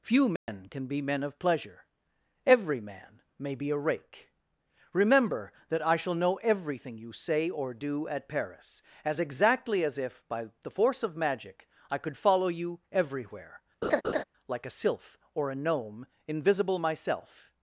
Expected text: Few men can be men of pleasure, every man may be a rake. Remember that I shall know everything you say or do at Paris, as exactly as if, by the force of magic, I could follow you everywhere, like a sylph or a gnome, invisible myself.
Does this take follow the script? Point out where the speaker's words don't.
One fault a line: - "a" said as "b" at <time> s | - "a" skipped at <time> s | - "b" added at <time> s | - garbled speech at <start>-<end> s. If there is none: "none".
none